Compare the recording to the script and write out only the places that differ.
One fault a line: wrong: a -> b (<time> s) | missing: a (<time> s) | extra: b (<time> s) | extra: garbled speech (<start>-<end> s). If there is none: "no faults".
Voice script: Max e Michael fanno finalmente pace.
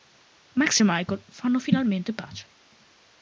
no faults